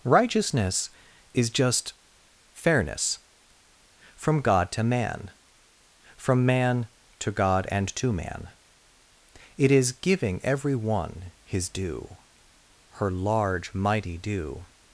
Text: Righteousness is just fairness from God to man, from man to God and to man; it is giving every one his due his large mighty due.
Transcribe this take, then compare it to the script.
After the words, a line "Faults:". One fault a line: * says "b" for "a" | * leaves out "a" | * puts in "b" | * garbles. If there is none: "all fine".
Righteousness is just fairness from God to man, from man to God and to man; it is giving every one his due her large mighty due.
Faults:
* says "her" for "his"